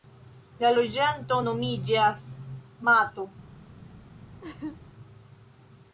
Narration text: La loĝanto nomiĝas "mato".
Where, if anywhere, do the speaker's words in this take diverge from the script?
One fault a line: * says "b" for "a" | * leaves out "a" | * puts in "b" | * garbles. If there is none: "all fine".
all fine